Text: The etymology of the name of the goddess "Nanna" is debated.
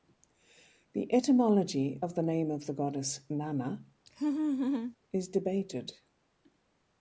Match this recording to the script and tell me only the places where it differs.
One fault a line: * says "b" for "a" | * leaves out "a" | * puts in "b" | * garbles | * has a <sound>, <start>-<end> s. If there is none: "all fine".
* has a laugh, 4.1-5.0 s